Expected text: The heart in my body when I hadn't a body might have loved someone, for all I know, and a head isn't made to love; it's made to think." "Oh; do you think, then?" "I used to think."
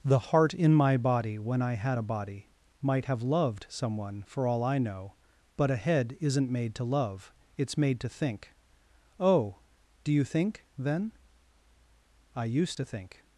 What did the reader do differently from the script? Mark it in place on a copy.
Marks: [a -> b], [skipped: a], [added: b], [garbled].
The heart in my body when I [hadn't -> had] a body might have loved someone, for all I know, [and -> but] a head isn't made to love; it's made to think." "Oh; do you think, then?" "I used to think."